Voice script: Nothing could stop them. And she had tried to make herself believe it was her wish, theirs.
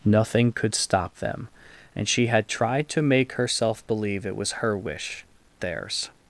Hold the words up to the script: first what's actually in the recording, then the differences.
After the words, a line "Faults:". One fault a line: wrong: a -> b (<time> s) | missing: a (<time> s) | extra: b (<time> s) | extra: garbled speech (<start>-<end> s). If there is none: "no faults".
Nothing could stop them. And she had tried to make herself believe it was her wish, theirs.
Faults:
no faults